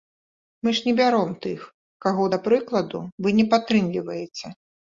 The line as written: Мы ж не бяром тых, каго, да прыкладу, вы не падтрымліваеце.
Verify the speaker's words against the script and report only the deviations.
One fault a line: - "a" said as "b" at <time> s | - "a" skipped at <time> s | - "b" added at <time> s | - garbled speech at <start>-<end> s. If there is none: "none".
none